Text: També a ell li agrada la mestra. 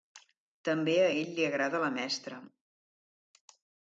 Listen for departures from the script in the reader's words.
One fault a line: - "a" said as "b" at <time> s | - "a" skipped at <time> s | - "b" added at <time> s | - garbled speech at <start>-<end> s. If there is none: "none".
none